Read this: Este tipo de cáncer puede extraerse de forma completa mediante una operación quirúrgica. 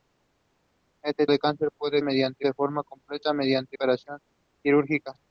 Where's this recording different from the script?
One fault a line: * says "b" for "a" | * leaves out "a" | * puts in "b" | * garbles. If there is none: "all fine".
* leaves out "tipo"
* says "mediante" for "extraerse"
* leaves out "una"